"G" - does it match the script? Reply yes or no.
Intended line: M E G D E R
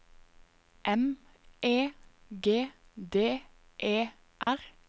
yes